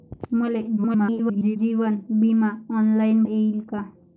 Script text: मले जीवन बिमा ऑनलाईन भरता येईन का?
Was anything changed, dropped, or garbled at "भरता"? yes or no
yes